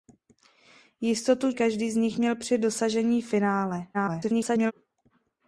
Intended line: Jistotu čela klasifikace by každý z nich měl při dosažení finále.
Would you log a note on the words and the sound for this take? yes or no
yes